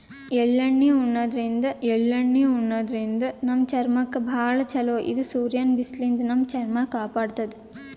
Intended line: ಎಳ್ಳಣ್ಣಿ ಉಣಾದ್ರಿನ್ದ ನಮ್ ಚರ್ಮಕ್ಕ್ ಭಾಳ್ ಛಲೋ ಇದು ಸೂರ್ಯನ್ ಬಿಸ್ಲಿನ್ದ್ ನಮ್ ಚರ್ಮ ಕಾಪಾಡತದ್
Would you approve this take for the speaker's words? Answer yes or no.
no